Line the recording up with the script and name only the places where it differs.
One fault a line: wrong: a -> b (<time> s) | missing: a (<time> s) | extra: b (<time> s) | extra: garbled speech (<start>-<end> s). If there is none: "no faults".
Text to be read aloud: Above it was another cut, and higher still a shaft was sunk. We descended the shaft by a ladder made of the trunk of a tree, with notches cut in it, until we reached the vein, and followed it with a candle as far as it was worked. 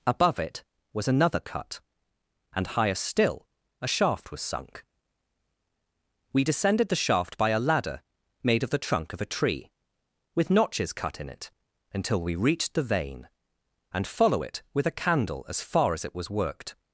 wrong: followed -> follow (14.1 s)